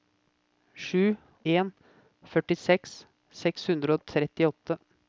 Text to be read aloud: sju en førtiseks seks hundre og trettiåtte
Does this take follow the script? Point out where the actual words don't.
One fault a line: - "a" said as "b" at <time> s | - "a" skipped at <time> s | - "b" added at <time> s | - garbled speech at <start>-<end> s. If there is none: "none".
none